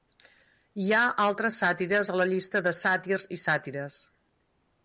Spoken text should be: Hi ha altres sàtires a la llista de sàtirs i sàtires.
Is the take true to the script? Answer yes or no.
yes